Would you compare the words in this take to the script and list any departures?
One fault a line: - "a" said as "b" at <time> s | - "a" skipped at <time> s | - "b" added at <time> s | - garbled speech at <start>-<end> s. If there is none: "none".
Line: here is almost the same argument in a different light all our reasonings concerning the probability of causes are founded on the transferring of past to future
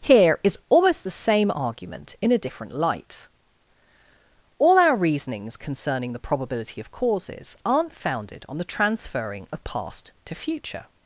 - "are" said as "aren't" at 7.6 s